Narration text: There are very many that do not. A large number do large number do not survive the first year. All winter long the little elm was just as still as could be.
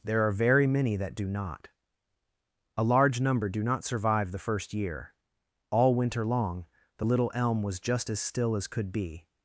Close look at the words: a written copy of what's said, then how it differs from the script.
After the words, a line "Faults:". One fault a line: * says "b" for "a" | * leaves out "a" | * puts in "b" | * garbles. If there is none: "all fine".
There are very many that do not. A large number do not survive the first year. All winter long the little elm was just as still as could be.
Faults:
* leaves out "large number do"